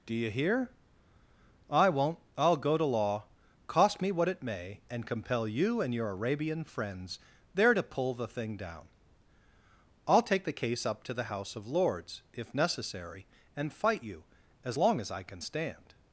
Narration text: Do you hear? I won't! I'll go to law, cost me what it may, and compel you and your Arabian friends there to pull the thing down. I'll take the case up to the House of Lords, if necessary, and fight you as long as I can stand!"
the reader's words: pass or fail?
pass